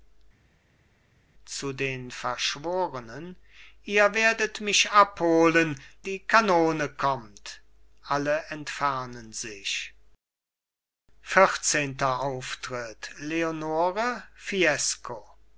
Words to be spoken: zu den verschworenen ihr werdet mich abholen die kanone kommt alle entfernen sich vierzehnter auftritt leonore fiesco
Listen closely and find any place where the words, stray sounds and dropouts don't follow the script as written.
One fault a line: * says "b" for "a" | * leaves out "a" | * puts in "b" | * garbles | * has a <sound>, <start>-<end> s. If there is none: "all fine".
all fine